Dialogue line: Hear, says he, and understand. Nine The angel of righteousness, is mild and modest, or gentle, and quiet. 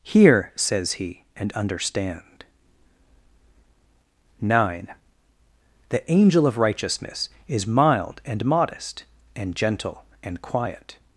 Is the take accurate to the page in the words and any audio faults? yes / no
no